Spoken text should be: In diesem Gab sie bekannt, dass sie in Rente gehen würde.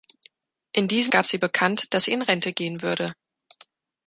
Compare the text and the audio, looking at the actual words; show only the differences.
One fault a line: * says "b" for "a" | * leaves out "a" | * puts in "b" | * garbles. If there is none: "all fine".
all fine